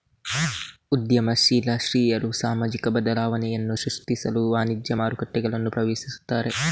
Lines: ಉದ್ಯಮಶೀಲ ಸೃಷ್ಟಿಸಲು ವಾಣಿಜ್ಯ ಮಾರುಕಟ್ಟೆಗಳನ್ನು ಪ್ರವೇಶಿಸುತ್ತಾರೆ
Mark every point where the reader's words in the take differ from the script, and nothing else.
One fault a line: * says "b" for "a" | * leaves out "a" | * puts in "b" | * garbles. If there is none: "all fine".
* puts in "ಸ್ತ್ರೀಯರು ಸಾಮಾಜಿಕ ಬದಲಾವಣೆಯನ್ನು"